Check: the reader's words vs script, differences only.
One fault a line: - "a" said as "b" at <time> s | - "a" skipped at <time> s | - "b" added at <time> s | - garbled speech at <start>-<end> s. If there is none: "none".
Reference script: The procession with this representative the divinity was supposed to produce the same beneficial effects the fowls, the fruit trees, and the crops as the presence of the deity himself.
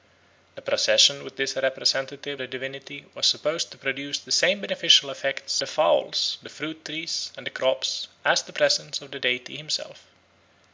none